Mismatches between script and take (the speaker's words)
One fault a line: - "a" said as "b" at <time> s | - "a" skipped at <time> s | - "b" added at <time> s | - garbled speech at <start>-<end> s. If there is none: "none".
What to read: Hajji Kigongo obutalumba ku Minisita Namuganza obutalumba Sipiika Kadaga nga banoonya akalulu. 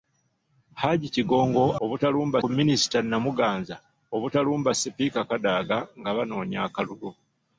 none